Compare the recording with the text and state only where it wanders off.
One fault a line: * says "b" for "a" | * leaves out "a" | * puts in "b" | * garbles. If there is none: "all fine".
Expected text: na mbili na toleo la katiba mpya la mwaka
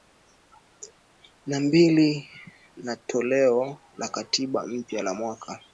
all fine